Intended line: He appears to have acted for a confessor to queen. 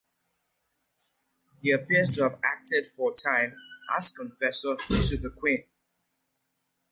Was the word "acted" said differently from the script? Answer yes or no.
no